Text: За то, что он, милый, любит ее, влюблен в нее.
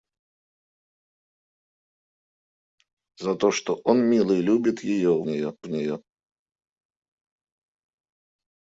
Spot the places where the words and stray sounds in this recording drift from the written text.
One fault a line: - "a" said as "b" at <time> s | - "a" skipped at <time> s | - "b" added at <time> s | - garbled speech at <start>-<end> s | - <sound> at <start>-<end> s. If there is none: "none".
- "влюблен" said as "нее" at 5.2 s